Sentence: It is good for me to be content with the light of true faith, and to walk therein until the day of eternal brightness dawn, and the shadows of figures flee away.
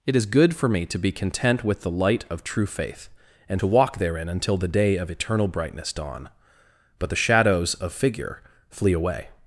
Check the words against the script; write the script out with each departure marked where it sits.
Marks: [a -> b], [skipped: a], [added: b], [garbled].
It is good for me to be content with the light of true faith, and to walk therein until the day of eternal brightness dawn, [and -> but] the shadows of [figures -> figure] flee away.